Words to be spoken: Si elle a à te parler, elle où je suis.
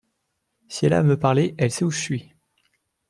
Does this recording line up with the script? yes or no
no